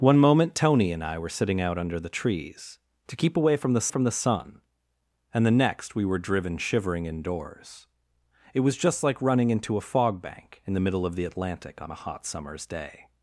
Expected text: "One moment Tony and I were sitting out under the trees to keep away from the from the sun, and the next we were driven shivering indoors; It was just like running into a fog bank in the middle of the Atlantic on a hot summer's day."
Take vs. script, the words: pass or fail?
pass